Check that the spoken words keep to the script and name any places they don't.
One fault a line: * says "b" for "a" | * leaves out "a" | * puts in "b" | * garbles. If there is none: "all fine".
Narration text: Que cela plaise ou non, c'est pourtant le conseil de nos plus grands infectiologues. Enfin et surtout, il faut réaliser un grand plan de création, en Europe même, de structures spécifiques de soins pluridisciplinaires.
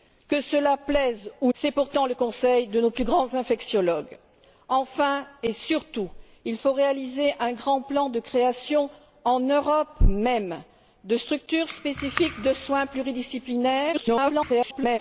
* leaves out "non"
* garbles